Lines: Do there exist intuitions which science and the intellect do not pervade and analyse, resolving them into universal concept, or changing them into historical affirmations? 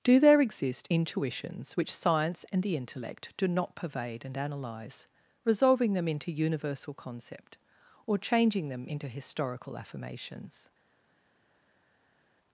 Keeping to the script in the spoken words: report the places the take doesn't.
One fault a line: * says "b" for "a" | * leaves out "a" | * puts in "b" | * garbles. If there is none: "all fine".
all fine